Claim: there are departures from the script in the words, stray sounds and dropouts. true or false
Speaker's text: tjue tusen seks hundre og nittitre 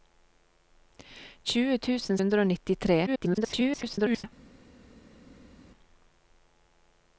true